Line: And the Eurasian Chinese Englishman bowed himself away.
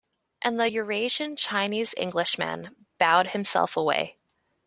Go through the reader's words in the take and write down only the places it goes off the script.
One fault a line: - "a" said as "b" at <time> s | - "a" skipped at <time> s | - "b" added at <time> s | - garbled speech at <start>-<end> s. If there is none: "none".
none